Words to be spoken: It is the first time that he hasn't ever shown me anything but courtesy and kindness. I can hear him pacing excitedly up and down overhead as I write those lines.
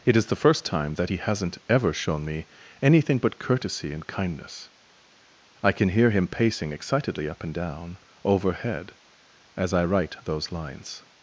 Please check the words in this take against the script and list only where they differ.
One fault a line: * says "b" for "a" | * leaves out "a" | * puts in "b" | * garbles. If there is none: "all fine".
all fine